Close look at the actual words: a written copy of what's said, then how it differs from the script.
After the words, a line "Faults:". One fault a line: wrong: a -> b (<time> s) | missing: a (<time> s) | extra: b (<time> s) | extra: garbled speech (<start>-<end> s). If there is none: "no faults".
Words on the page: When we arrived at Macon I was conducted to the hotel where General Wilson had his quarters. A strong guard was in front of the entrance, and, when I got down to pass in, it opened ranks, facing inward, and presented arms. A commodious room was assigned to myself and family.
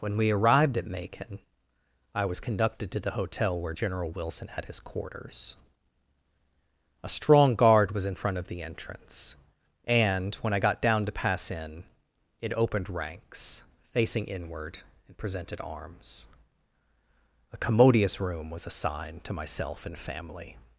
When we arrived at Macon I was conducted to the hotel where General Wilson had his quarters. A strong guard was in front of the entrance, and, when I got down to pass in, it opened ranks, facing inward, and presented arms. A commodious room was assigned to myself and family.
Faults:
no faults